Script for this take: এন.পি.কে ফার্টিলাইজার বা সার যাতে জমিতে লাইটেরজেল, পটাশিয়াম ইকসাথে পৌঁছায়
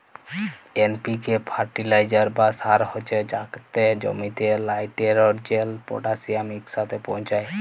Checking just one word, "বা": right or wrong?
right